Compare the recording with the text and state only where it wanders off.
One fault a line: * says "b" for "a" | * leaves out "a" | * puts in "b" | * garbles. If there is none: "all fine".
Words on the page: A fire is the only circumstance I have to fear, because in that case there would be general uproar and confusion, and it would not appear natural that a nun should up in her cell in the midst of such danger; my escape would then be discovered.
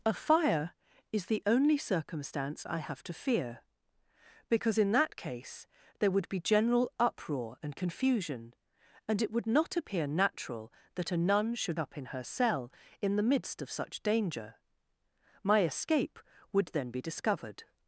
all fine